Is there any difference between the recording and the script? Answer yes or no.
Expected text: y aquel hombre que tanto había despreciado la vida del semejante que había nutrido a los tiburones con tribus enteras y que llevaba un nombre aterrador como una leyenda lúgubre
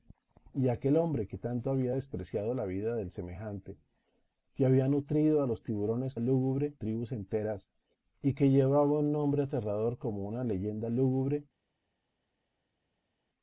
yes